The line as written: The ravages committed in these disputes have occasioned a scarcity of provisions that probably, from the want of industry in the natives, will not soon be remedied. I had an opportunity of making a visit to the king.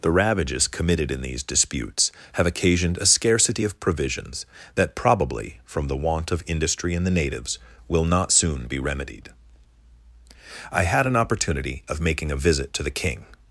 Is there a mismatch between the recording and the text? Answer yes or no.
no